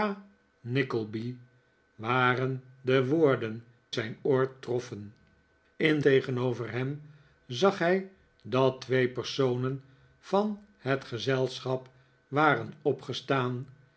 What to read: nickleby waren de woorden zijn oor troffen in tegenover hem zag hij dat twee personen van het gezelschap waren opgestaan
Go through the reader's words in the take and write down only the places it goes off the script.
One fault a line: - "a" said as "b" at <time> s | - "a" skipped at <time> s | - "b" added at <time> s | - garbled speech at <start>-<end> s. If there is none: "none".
none